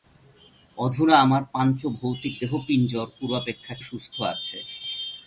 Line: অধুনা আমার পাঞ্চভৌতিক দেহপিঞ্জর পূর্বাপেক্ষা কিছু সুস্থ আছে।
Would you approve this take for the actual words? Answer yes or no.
no